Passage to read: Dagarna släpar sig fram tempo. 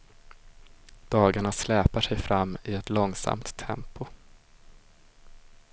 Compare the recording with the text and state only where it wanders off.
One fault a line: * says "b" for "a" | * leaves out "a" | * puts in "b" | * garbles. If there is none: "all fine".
* puts in "i ett långsamt"